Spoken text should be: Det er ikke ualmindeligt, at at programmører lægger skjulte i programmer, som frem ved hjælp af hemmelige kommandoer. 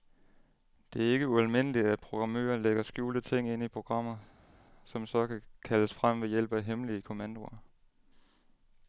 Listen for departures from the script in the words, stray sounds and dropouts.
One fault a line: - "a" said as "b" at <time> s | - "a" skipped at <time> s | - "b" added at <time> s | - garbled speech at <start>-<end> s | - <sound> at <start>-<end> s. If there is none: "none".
- "at" skipped at 2.0 s
- "ting ind" added at 3.2 s
- "så kan kaldes" added at 5.1 s